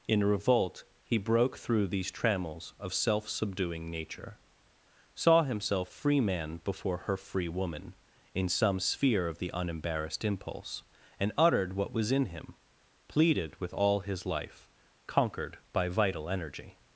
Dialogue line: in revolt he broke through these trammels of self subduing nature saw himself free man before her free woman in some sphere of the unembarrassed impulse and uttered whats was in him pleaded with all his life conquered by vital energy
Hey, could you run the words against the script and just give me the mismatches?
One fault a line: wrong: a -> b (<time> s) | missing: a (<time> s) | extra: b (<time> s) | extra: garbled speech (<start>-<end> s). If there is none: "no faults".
wrong: whats -> what (11.7 s)